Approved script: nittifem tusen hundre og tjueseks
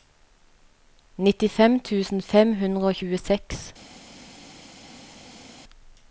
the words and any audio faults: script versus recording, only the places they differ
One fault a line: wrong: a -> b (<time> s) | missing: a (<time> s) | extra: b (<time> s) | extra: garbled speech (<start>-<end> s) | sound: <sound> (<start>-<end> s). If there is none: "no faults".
extra: fem (2.3 s)